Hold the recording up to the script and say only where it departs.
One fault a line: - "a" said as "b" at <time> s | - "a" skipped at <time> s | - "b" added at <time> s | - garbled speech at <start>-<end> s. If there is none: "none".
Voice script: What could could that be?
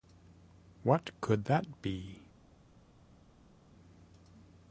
- "could" skipped at 1.4 s